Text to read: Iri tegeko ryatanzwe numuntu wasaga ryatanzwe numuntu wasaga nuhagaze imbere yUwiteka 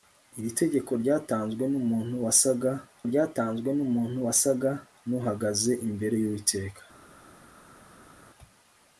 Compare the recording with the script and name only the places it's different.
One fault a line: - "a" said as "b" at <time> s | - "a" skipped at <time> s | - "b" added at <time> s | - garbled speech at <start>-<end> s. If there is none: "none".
none